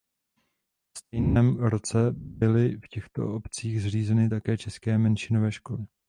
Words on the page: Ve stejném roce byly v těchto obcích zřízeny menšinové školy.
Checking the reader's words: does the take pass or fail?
fail